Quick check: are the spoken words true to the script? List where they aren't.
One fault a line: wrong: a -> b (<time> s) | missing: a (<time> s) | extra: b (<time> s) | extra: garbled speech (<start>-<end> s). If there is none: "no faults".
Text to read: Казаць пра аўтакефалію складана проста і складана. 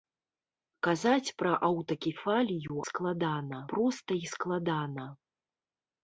no faults